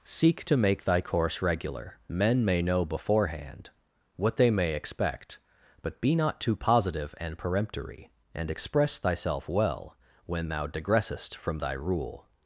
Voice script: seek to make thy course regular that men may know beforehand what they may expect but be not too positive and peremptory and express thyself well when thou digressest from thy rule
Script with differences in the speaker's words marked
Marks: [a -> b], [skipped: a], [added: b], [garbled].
seek to make thy course regular [skipped: that] men may know beforehand what they may expect but be not too positive and peremptory and express thyself well when thou digressest from thy rule